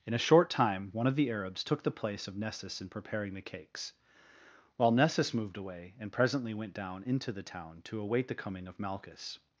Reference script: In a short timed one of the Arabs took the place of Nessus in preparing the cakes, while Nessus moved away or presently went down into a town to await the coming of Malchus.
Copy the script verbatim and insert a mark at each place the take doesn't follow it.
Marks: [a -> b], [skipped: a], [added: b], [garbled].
In a short [timed -> time] one of the Arabs took the place of Nessus in preparing the cakes, while Nessus moved away [or -> and] presently went down into [a -> the] town to await the coming of Malchus.